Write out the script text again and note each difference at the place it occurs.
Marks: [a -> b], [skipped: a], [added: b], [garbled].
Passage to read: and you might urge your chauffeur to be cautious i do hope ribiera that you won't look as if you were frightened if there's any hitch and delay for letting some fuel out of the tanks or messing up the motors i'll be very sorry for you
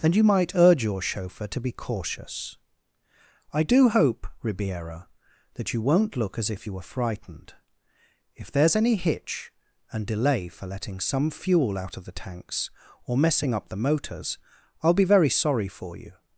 and you might urge your chauffeur to be cautious i do hope ribiera that you won't look as if you were frightened if there's any hitch and delay for letting some fuel out of the tanks or messing up the motors i'll be very sorry for you